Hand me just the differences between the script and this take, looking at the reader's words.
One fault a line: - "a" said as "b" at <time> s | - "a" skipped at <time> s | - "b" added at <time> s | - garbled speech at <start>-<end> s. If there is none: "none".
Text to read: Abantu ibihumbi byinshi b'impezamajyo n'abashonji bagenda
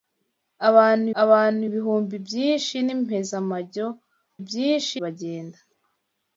- "abantu" added at 1.2 s
- "n'abashonji" said as "byinshi" at 4.5 s